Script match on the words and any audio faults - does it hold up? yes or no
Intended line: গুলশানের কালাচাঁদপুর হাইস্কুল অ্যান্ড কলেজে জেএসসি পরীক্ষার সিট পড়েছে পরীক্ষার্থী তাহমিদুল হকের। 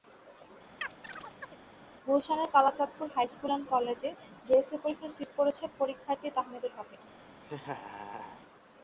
no